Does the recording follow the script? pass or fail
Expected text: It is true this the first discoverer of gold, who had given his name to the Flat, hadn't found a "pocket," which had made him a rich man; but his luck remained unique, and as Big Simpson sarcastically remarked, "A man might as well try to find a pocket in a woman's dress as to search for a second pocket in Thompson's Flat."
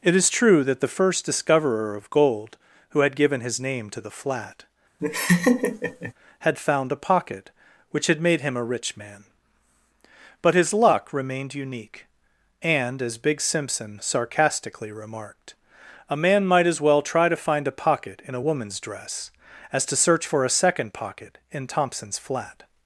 fail